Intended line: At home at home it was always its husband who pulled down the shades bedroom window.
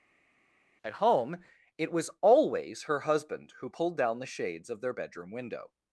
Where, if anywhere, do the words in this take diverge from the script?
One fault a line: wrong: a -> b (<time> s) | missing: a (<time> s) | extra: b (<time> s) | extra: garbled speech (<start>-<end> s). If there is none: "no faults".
missing: at home (1.4 s)
wrong: its -> her (2.8 s)
extra: of their (4.7 s)